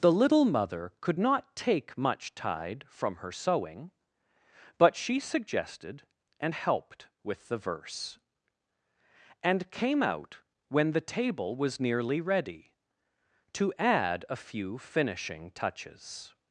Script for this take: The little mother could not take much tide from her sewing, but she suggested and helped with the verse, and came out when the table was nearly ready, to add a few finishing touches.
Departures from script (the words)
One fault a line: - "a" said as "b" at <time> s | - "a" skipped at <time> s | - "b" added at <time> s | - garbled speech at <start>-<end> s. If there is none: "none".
none